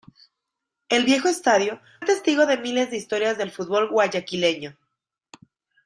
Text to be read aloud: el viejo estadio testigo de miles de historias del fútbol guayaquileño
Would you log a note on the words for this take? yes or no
no